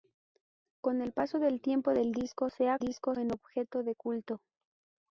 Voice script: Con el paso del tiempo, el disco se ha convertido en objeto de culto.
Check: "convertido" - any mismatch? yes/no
yes